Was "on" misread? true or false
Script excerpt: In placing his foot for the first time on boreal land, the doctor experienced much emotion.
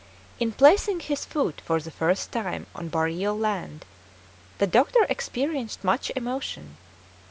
false